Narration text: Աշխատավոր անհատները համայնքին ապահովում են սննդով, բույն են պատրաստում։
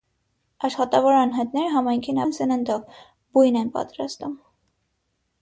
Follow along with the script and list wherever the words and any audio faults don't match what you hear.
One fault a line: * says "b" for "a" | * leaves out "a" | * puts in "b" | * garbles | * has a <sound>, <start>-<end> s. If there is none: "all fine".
* leaves out "ապահովում"